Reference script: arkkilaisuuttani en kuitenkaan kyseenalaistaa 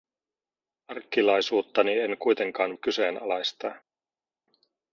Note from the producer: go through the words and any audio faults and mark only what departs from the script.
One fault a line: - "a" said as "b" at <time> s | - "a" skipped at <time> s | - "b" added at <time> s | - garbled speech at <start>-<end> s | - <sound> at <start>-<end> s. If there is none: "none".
none